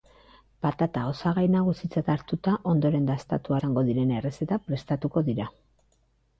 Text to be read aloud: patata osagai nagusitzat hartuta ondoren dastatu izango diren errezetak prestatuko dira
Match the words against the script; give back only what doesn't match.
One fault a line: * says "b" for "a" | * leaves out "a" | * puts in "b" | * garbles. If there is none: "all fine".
all fine